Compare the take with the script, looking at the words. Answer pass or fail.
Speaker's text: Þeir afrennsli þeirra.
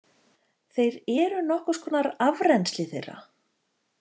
fail